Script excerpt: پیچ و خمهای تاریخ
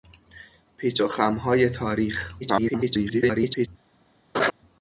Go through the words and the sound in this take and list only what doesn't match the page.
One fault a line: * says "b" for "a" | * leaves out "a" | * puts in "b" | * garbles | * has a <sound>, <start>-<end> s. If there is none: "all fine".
* garbles
* has a laugh, 4.3-4.5 s